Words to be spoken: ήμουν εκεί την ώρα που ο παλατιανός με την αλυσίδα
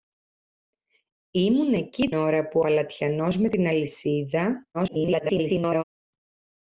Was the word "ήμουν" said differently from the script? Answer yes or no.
no